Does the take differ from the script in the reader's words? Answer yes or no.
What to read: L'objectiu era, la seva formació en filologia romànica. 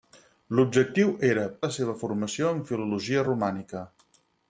no